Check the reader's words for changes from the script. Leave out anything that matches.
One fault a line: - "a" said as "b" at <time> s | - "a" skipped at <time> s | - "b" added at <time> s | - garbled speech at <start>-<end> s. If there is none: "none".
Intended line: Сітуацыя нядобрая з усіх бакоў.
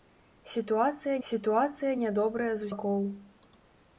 - "сітуацыя" added at 1.3 s
- "усіх" skipped at 2.7 s